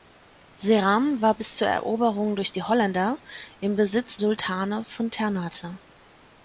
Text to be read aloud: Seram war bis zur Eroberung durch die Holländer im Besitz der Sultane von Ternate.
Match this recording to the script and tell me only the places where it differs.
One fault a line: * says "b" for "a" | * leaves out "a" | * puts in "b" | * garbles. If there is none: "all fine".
* leaves out "der"